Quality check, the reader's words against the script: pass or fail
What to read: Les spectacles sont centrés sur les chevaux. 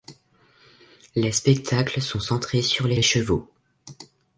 fail